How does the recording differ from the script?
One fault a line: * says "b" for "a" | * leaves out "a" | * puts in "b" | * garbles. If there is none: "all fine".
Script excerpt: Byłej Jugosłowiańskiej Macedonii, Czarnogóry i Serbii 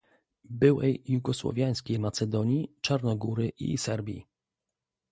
all fine